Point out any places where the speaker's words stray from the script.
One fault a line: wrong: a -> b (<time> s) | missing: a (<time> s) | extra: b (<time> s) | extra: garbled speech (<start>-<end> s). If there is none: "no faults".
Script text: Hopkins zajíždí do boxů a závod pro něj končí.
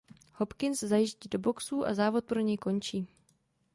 no faults